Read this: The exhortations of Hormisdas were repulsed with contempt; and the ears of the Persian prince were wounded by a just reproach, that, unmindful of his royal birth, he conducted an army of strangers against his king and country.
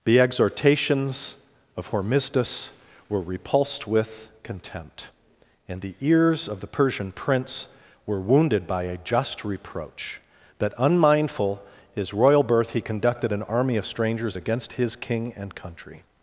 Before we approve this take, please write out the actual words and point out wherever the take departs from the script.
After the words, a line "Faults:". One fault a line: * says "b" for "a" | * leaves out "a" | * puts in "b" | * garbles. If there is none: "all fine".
The exhortations of Hormisdas were repulsed with contempt; and the ears of the Persian prince were wounded by a just reproach, that, unmindful his royal birth, he conducted an army of strangers against his king and country.
Faults:
* leaves out "of"